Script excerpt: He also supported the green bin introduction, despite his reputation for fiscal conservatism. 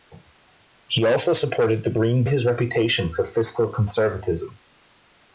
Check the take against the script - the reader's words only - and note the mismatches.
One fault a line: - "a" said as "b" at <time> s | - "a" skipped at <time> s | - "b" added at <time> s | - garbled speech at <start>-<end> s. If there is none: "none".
- "bin introduction despite" skipped at 2.2 s